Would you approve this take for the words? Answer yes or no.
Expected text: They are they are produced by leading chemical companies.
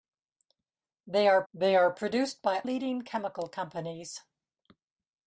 yes